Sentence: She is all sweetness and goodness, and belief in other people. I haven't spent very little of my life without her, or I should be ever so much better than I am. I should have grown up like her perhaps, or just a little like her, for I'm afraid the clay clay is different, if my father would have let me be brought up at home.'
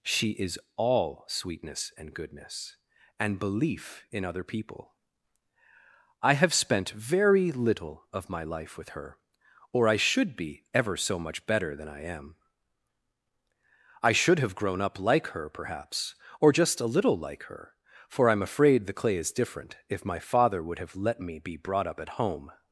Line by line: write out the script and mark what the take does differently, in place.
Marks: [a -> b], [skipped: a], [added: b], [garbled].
She is all sweetness and goodness, and belief in other people. I [haven't -> have] spent very little of my life [without -> with] her, or I should be ever so much better than I am. I should have grown up like her perhaps, or just a little like her, for I'm afraid the clay [skipped: clay] is different, if my father would have let me be brought up at home.'